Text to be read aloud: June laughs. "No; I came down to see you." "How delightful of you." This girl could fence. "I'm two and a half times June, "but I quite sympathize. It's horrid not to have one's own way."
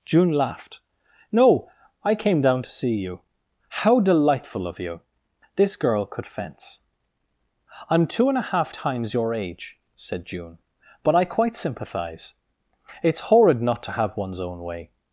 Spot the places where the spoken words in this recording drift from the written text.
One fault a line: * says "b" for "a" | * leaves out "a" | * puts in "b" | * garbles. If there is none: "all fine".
* says "laughed" for "laughs"
* puts in "your age said"